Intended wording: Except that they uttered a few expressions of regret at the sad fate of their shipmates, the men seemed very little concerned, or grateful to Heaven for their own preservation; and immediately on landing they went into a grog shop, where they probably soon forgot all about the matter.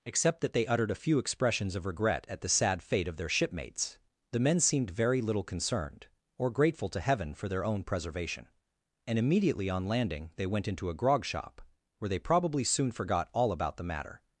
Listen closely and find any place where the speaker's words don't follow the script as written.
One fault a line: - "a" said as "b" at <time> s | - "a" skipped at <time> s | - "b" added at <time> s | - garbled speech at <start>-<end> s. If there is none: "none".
none